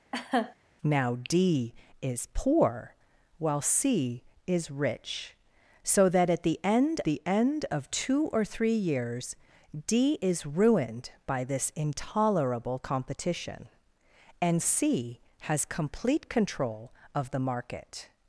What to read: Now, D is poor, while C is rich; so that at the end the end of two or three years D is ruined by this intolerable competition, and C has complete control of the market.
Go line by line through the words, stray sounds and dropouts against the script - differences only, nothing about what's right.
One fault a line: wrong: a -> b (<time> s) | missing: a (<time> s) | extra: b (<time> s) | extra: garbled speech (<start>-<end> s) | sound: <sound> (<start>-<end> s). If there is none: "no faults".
sound: laugh (0.1-0.5 s)